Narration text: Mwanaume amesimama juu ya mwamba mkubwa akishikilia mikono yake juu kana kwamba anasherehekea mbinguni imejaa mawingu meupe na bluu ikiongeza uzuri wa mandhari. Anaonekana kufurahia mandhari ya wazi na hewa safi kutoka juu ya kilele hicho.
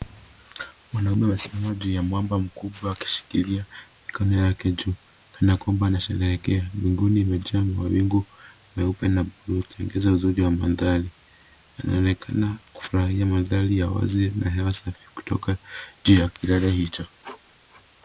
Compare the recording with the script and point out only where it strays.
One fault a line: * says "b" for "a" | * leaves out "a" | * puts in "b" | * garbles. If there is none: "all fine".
all fine